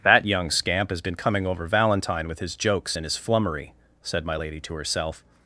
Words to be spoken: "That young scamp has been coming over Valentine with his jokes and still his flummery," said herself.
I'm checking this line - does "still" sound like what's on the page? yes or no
no